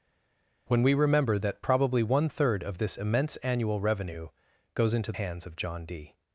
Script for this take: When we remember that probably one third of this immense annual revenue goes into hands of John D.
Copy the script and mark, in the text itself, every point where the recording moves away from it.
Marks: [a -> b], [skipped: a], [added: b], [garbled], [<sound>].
When we remember that probably one third of this immense annual revenue goes into hands of John D.